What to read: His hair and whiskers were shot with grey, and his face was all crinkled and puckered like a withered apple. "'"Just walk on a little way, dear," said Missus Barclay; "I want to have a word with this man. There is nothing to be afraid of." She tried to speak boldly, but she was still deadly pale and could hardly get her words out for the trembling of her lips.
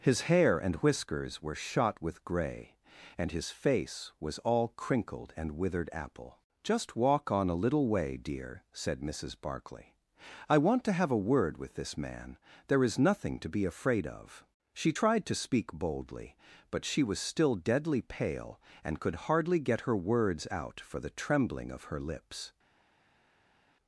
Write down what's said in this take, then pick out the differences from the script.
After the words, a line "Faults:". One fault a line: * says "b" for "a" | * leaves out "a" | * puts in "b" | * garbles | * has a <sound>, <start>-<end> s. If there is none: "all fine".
His hair and whiskers were shot with grey, and his face was all crinkled and withered apple. "'"Just walk on a little way, dear," said Missus Barclay; "I want to have a word with this man. There is nothing to be afraid of." She tried to speak boldly, but she was still deadly pale and could hardly get her words out for the trembling of her lips.
Faults:
* leaves out "puckered like a"